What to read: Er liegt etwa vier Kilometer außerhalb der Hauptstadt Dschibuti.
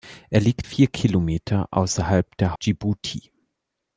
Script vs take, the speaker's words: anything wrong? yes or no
yes